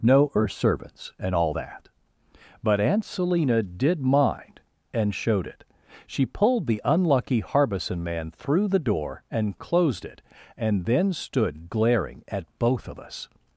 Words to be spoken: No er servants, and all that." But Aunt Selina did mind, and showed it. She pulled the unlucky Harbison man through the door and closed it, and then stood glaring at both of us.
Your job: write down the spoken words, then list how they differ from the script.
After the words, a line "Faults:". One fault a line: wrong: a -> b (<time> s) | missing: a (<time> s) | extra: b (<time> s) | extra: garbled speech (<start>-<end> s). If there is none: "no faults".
No er servants, and all that." But Aunt Selina did mind, and showed it. She pulled the unlucky Harbison man through the door and closed it, and then stood glaring at both of us.
Faults:
no faults